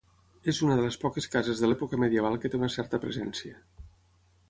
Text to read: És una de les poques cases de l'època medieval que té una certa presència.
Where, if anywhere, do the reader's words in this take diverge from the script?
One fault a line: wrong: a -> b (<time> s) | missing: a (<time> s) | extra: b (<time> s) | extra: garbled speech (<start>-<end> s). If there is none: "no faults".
no faults